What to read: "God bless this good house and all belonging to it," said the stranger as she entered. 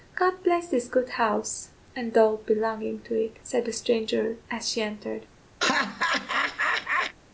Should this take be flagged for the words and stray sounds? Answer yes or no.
yes